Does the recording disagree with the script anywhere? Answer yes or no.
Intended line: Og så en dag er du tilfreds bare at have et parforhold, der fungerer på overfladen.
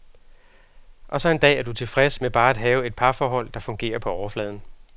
yes